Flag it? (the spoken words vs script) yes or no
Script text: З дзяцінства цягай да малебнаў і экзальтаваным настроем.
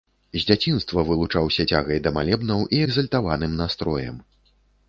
yes